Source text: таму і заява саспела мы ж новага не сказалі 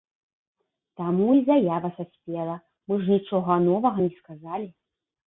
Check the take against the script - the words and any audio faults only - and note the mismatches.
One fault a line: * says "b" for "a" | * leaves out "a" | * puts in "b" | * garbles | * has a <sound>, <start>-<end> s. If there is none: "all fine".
* puts in "нічога"